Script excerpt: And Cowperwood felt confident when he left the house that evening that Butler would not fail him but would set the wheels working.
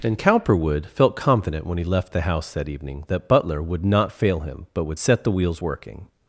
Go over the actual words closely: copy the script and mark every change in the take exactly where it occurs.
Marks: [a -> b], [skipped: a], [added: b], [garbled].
And Cowperwood felt confident when he left the house that evening that Butler would not fail him but would set the wheels working.